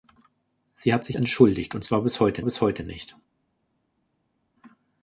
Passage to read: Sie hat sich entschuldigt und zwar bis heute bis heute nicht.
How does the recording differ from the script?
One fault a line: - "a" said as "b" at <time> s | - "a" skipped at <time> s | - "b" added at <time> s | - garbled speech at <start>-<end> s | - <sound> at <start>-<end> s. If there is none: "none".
none